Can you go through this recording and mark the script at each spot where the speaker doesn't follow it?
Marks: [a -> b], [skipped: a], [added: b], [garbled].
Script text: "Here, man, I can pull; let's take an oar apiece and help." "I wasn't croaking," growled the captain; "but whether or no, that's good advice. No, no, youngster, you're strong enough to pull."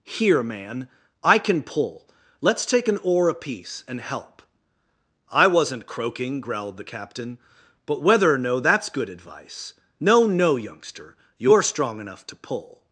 "Here, man, I can pull; let's take an oar apiece and help." "I wasn't croaking," growled the captain; "but whether or no, that's good advice. No, no, youngster, you're strong enough to pull."